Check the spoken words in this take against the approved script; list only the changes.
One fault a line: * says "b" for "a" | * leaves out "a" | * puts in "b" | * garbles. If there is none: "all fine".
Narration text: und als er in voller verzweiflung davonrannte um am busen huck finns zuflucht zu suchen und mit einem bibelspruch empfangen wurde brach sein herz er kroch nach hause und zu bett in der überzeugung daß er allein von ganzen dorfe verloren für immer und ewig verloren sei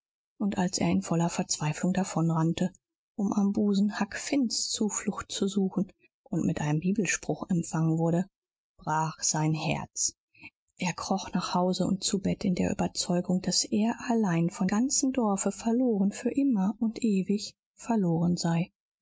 all fine